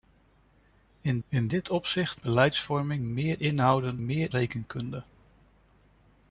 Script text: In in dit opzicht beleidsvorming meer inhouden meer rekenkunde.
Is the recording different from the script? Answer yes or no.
no